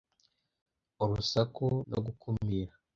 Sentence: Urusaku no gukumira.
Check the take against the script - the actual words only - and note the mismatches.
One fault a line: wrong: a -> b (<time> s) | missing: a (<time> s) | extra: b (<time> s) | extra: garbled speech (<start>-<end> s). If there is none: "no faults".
no faults